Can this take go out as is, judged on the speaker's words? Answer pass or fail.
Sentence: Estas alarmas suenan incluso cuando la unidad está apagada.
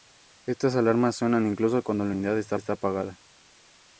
fail